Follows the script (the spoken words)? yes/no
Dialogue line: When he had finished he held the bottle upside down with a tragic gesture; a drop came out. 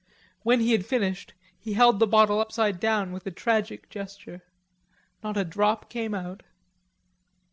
no